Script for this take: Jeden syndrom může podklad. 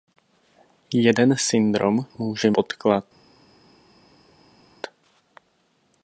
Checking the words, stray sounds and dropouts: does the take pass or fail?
pass